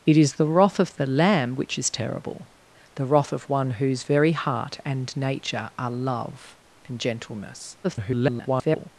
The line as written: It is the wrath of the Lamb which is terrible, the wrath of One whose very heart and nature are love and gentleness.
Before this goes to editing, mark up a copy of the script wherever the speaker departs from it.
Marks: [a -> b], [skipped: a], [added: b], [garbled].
It is the wrath of the Lamb which is terrible, the wrath of One whose very heart and nature are love and gentleness. [garbled]